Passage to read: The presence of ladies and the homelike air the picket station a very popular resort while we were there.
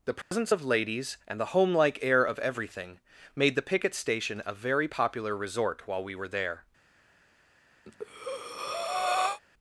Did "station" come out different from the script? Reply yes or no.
no